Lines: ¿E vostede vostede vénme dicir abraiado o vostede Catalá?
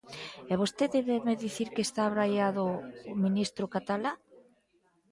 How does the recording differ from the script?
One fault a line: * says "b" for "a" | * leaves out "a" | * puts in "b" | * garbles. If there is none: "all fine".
* leaves out "vostede"
* puts in "que está"
* says "ministro" for "vostede"